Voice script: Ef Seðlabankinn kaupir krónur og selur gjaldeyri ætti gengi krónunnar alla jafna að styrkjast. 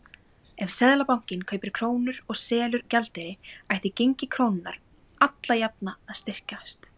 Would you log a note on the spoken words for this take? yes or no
no